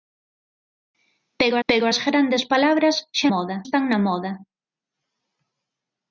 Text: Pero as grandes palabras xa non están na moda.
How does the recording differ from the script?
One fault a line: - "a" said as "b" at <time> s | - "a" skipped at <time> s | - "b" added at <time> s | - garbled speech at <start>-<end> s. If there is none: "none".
- "pero" added at 1.7 s
- "non" said as "moda" at 3.3 s